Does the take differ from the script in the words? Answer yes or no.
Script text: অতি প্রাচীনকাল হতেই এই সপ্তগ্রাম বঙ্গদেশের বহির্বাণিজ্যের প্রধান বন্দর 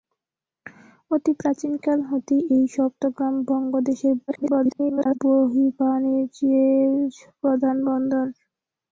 yes